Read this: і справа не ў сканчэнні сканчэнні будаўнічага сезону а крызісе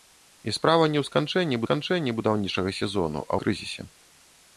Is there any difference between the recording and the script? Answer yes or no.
no